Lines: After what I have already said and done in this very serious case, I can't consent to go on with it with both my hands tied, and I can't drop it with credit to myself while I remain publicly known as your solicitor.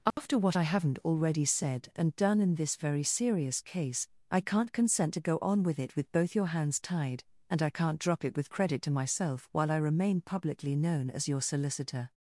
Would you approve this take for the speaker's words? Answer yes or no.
no